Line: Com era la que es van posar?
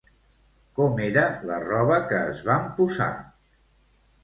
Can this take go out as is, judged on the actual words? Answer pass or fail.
fail